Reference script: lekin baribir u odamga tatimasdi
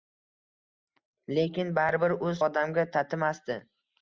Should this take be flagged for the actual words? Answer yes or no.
no